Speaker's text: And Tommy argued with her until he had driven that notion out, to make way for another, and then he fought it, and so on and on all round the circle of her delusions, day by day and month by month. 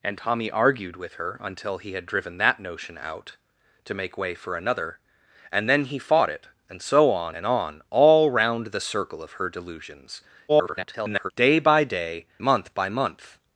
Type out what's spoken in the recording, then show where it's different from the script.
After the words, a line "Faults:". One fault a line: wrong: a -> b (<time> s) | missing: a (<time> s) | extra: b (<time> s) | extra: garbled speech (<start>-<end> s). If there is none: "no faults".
And Tommy argued with her until he had driven that notion out, to make way for another, and then he fought it, and so on and on all round the circle of her delusions, [garbled] day by day month by month.
Faults:
extra: garbled speech (10.5-11.3 s)
missing: and (12.3 s)